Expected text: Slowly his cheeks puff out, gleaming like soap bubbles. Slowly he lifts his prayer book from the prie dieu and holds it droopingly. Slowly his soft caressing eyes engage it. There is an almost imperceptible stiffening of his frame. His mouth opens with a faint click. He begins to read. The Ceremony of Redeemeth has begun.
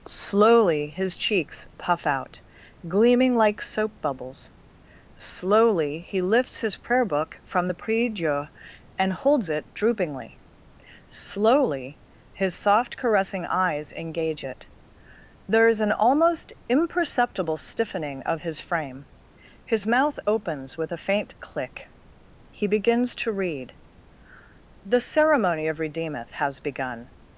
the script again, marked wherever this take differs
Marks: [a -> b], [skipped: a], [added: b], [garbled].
Slowly his cheeks puff out, gleaming like soap bubbles. Slowly he lifts his prayer book from the prie dieu and holds it droopingly. Slowly his soft caressing eyes engage it. There is an almost imperceptible stiffening of his frame. His mouth opens with a faint click. He begins to read. The Ceremony of Redeemeth has begun.